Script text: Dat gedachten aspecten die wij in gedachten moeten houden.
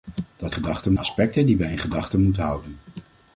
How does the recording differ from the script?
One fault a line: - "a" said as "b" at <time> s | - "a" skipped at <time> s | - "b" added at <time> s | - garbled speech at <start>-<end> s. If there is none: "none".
none